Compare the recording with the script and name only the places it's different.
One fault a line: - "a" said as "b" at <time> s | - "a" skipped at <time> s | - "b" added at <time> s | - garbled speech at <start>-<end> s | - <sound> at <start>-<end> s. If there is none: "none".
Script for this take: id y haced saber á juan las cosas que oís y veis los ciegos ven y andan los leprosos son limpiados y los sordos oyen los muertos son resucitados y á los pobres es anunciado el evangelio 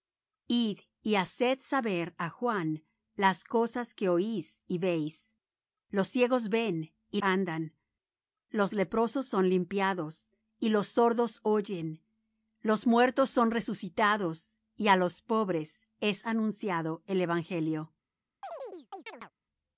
- chirp at 18.4-19.3 s